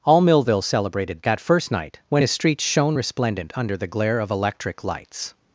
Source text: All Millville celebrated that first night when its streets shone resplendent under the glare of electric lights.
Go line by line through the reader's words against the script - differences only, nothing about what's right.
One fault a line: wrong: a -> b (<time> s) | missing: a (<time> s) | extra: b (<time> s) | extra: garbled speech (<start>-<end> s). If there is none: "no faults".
wrong: its -> his (2.2 s)